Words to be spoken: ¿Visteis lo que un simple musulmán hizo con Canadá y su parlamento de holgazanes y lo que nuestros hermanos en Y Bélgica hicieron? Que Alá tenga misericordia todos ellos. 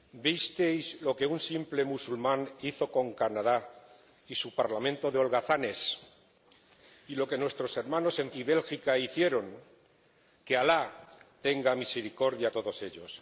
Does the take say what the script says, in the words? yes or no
yes